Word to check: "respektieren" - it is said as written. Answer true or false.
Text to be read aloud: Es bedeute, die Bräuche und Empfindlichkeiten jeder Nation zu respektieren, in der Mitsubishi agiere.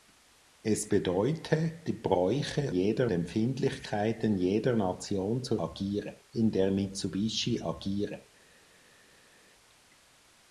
false